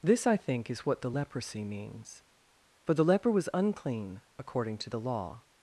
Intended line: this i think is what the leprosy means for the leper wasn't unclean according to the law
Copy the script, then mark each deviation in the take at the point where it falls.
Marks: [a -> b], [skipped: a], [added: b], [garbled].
this i think is what the leprosy means for the leper [wasn't -> was] unclean according to the law